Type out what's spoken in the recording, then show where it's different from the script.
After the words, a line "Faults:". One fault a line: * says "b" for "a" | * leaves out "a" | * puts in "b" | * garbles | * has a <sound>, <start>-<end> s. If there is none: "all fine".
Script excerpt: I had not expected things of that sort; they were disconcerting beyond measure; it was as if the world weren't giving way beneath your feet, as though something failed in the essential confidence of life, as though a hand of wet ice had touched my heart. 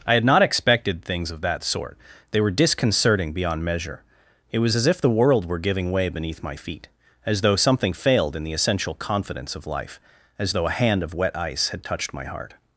I had not expected things of that sort; they were disconcerting beyond measure; it was as if the world were giving way beneath my feet, as though something failed in the essential confidence of life, as though a hand of wet ice had touched my heart.
Faults:
* says "were" for "weren't"
* says "my" for "your"